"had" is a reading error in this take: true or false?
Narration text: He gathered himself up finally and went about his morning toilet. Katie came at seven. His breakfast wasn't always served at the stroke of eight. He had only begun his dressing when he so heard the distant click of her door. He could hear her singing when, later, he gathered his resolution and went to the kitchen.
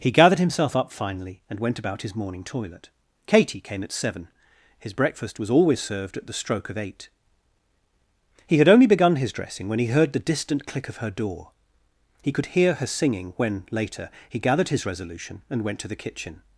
false